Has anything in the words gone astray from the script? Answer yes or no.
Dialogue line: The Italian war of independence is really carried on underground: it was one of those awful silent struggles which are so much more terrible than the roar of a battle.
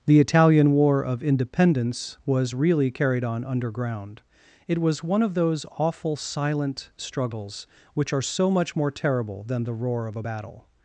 yes